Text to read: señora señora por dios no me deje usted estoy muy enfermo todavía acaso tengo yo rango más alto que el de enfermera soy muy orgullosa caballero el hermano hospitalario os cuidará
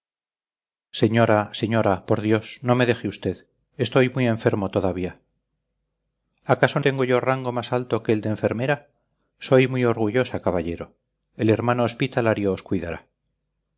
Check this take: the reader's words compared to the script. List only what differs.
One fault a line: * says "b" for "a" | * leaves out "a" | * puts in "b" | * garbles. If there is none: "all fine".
all fine